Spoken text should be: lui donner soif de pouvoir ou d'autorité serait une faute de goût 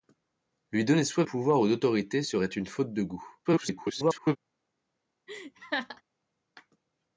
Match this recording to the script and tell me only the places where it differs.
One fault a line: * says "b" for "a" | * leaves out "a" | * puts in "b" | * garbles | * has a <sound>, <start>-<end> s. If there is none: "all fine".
* leaves out "de"
* garbles
* has a laugh, 5.3-6.0 s